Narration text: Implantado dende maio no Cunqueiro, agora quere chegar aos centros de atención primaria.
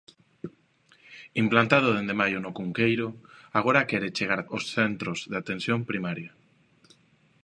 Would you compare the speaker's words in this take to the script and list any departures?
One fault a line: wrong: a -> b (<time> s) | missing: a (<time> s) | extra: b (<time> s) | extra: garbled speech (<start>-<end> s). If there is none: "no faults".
no faults